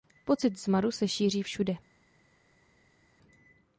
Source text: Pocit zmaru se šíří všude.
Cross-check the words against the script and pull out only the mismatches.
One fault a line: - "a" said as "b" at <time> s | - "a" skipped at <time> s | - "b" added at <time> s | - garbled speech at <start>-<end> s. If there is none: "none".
none